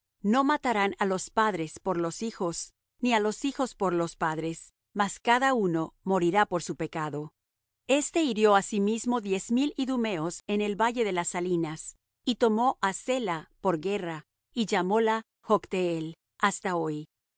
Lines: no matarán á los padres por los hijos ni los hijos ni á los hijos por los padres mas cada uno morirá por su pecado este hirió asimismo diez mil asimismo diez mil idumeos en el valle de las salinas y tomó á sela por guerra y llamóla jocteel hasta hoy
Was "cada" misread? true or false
false